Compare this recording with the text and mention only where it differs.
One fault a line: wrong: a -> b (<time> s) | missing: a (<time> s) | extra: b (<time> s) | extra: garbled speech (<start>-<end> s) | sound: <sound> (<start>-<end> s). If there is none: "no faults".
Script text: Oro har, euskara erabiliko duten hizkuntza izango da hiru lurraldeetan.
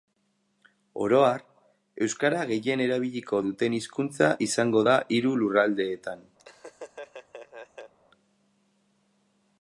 extra: gehien (2.5 s)
sound: laugh (6.4-7.9 s)